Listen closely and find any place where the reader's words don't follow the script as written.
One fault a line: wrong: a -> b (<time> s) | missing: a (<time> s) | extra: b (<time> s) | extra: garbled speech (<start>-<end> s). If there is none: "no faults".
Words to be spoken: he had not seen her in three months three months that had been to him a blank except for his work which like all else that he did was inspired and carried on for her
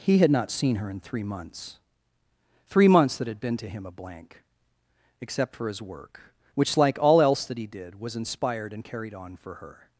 no faults